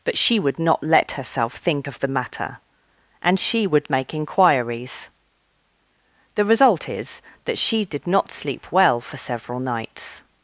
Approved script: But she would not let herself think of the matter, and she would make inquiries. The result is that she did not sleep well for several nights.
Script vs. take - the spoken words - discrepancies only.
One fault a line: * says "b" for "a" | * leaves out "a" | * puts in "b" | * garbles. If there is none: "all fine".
all fine